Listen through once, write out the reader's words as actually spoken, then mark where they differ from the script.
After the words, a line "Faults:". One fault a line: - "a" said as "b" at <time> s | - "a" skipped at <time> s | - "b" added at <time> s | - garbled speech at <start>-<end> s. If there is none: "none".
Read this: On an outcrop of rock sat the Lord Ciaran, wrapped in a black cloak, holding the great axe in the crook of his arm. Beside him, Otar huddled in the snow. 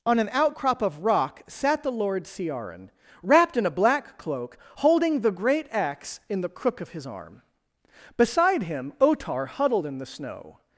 On an outcrop of rock sat the Lord Ciaran, wrapped in a black cloak, holding the great axe in the crook of his arm. Beside him, Otar huddled in the snow.
Faults:
none